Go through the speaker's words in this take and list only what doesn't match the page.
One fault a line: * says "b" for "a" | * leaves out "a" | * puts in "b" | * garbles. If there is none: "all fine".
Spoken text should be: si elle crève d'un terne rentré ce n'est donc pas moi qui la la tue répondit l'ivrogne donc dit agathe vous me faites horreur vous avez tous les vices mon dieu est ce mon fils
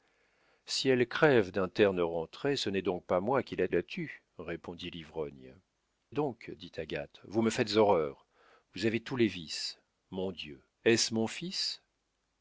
all fine